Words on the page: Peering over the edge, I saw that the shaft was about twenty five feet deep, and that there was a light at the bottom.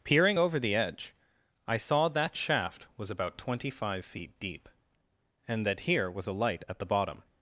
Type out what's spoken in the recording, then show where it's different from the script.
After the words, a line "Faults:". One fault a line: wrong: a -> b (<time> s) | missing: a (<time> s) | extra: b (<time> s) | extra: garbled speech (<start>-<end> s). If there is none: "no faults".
Peering over the edge, I saw that shaft was about twenty five feet deep, and that here was a light at the bottom.
Faults:
missing: the (2.3 s)
wrong: there -> here (5.8 s)